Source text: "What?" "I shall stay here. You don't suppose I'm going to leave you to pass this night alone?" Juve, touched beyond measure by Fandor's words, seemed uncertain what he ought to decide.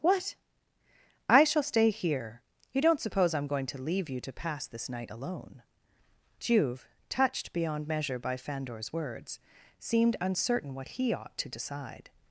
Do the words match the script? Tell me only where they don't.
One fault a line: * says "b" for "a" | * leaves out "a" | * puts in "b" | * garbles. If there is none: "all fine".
all fine